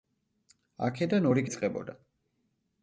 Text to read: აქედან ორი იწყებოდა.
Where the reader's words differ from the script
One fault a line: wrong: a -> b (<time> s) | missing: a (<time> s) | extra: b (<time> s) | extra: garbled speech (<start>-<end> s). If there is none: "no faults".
no faults